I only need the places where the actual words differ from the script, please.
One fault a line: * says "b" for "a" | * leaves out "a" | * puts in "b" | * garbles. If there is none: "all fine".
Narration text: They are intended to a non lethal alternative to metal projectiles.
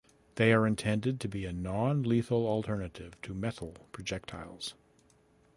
* puts in "be"